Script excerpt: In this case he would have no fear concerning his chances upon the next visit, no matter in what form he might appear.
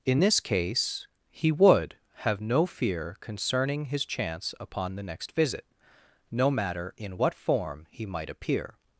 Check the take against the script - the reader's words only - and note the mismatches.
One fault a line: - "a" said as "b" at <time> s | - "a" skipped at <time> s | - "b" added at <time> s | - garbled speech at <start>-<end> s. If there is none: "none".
- "chances" said as "chance" at 4.1 s